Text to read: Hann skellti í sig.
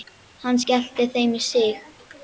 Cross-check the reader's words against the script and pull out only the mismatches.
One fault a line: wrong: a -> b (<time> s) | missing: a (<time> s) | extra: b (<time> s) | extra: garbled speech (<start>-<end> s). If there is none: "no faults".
extra: þeim (1.2 s)